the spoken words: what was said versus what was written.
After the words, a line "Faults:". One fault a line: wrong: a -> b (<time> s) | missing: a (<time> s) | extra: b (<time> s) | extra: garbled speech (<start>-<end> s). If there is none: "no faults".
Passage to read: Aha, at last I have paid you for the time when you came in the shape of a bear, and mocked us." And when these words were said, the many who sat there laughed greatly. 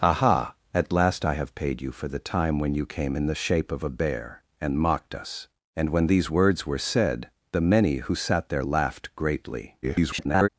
Aha, at last I have paid you for the time when you came in the shape of a bear, and mocked us." And when these words were said, the many who sat there laughed greatly. [garbled]
Faults:
extra: garbled speech (9.8-10.5 s)